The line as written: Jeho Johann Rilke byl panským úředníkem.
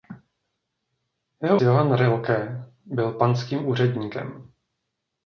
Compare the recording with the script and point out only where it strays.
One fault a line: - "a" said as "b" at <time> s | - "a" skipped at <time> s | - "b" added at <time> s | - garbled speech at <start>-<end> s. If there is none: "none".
none